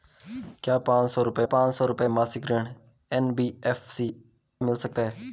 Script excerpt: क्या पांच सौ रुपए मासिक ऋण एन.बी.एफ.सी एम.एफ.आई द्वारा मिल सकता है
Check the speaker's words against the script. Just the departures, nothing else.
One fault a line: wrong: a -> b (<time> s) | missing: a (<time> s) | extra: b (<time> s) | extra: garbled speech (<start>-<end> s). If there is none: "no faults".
extra: पांच सौ रुपए (1.4 s)
missing: एम.एफ.आई द्वारा (4.1 s)